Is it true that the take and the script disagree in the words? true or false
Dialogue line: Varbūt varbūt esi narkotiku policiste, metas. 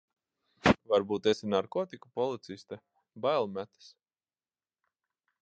true